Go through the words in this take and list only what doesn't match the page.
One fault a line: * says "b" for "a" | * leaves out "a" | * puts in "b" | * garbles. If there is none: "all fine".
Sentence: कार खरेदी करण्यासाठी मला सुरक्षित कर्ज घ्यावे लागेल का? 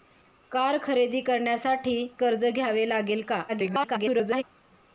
* leaves out "मला सुरक्षित"
* garbles